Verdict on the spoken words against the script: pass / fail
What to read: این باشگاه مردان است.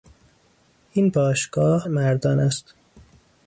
pass